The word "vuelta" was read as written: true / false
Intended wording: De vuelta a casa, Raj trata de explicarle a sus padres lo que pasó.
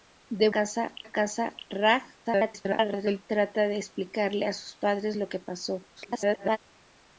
false